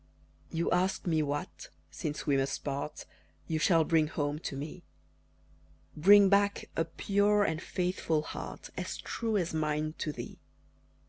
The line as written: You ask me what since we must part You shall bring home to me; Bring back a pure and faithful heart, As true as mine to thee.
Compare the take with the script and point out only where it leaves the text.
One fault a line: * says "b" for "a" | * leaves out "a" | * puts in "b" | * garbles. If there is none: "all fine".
all fine